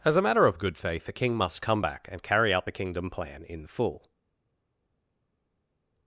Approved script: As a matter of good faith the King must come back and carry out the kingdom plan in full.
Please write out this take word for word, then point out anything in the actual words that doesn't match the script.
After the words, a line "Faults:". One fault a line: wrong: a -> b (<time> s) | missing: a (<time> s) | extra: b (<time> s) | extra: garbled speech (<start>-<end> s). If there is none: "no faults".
As a matter of good faith the King must come back and carry out the kingdom plan in full.
Faults:
no faults